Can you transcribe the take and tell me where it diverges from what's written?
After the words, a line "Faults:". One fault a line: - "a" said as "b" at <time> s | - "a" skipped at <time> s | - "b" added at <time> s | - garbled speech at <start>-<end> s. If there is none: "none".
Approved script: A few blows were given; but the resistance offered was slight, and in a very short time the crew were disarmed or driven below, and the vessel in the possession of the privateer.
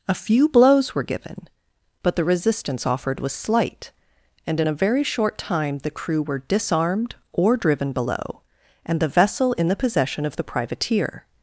A few blows were given; but the resistance offered was slight, and in a very short time the crew were disarmed or driven below, and the vessel in the possession of the privateer.
Faults:
none